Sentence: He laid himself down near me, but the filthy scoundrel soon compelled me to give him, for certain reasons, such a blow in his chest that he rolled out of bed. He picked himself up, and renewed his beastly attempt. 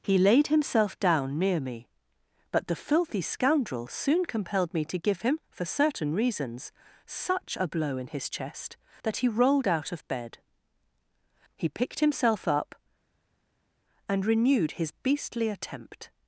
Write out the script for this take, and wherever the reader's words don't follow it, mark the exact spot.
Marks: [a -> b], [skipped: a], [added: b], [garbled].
He laid himself down near me, but the filthy scoundrel soon compelled me to give him, for certain reasons, such a blow in his chest that he rolled out of bed. He picked himself up, and renewed his beastly attempt.